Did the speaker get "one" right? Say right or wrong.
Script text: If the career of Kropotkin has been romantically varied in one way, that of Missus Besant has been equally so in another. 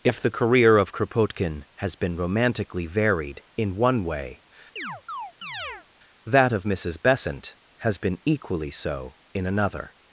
right